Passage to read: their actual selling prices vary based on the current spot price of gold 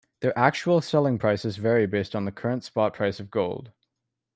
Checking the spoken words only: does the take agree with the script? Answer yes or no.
yes